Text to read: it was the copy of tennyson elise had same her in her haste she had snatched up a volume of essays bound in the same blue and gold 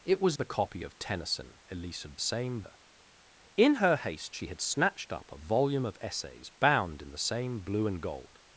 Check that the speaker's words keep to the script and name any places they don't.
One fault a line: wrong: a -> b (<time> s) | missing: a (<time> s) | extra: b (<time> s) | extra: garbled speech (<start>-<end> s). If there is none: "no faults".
no faults